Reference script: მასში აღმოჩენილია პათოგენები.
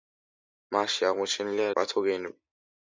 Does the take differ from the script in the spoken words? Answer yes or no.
no